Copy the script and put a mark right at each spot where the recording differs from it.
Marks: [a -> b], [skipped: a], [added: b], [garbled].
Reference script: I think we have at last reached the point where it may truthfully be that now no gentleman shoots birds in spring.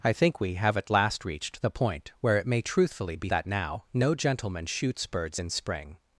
I think we have at last reached the point where it may truthfully be that now no gentleman shoots birds in spring.